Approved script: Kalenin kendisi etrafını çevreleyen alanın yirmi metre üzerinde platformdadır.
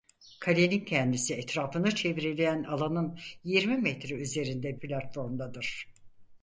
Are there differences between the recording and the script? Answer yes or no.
no